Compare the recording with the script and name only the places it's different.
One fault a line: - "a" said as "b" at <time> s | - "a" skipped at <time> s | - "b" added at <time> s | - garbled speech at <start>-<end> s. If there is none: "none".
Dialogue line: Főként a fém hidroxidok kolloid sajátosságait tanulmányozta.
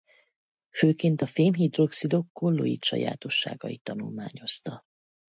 none